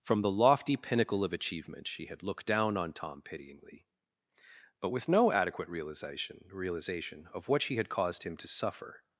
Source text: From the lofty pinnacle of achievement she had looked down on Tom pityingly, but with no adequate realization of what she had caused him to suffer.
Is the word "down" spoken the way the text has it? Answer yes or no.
yes